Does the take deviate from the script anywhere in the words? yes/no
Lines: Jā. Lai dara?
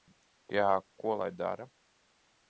yes